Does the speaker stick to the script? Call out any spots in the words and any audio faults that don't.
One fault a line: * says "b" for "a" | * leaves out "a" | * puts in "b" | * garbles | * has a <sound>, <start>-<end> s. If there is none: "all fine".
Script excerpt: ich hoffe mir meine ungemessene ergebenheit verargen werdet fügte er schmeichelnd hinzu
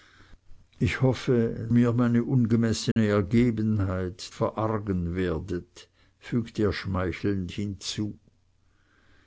* has a dropout, 2.9-3.0 s